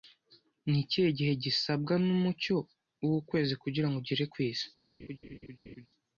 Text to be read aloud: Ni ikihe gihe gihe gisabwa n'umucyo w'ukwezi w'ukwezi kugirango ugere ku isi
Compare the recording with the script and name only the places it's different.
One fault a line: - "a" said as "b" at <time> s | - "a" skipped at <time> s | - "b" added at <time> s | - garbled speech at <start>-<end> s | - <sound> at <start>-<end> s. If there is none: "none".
- "gihe" skipped at 1.3 s
- "w'ukwezi" skipped at 3.5 s
- laugh at 5.0-5.9 s